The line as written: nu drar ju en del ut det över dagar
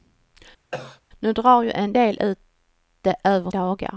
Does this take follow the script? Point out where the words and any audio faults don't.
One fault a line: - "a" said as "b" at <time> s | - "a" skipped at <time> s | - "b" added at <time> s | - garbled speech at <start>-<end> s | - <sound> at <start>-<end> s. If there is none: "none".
- cough at 0.7-1.0 s